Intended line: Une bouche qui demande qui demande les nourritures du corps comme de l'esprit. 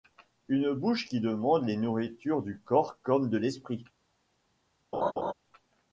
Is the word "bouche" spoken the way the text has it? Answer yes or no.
yes